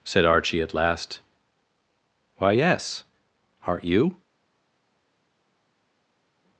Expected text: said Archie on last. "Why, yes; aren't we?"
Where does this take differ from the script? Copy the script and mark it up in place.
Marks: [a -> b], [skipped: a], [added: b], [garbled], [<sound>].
said Archie [on -> at] last. "Why, yes; aren't [we?" -> you]